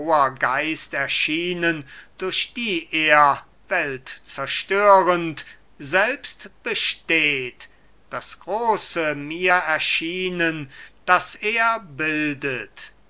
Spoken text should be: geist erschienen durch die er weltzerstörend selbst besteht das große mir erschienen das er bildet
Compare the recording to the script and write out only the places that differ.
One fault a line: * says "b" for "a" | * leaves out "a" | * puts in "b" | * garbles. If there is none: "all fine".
all fine